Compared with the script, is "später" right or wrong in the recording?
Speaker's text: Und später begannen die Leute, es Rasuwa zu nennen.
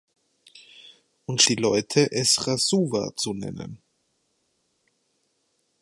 wrong